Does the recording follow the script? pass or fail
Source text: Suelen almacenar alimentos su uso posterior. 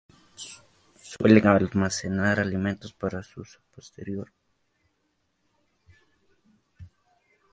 fail